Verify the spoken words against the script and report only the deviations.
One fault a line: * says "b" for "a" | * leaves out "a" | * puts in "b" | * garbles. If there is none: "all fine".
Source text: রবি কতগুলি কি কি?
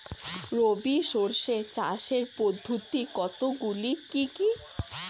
* puts in "শস্য চাষের পদ্ধতি"